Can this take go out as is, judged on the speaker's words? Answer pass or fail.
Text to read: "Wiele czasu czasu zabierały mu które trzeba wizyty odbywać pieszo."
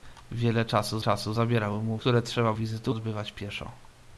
pass